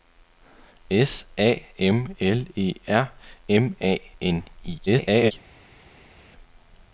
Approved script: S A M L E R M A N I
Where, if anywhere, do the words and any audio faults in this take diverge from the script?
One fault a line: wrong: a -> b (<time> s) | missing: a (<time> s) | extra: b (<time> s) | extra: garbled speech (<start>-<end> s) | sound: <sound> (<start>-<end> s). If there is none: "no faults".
extra: garbled speech (4.9-5.3 s)